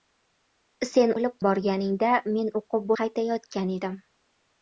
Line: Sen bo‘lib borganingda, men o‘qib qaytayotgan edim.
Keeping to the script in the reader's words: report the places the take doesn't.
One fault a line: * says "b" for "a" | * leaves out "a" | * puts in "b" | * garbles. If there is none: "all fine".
all fine